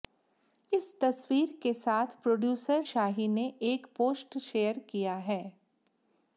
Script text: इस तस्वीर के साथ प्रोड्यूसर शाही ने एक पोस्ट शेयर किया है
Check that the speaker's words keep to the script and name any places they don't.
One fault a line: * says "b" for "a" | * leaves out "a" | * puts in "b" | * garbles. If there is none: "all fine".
all fine